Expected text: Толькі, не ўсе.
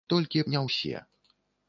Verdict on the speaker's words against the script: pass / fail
pass